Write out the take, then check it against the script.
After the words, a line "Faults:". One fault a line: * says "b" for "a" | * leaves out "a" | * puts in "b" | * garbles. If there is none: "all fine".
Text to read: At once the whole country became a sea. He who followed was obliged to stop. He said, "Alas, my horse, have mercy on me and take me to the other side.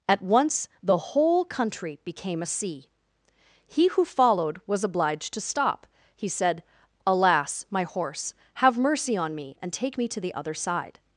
At once the whole country became a sea. He who followed was obliged to stop. He said, "Alas, my horse, have mercy on me and take me to the other side.
Faults:
all fine